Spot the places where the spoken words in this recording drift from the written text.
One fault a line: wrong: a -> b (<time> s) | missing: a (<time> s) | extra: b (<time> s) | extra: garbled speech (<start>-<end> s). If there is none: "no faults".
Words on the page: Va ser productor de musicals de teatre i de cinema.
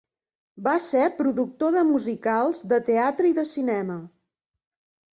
no faults